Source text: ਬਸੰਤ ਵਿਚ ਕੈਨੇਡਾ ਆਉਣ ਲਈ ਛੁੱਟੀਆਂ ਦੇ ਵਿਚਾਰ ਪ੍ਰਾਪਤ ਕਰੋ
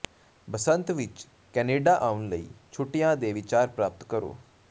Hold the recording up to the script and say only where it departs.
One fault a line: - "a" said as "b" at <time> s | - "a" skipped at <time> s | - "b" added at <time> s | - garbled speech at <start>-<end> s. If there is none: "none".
none